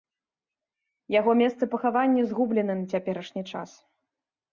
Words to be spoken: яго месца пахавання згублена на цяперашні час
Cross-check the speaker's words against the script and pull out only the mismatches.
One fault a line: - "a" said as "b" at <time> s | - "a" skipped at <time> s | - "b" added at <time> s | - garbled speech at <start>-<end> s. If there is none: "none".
none